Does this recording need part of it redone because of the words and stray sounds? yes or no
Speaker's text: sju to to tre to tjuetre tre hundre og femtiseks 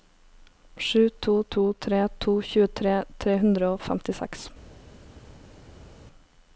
no